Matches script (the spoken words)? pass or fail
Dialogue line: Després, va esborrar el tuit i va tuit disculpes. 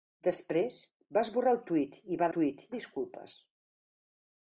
pass